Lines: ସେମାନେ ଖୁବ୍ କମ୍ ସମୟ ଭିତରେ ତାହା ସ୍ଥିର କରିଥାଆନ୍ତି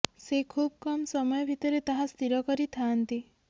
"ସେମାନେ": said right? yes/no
no